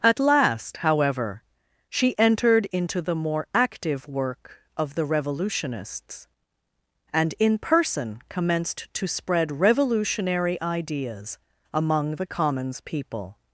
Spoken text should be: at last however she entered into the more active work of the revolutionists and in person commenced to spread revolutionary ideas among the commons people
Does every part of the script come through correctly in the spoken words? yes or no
yes